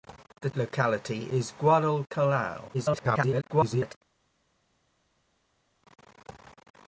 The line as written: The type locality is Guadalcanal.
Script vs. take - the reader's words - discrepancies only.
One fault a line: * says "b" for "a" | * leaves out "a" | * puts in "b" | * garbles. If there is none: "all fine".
* leaves out "type"
* garbles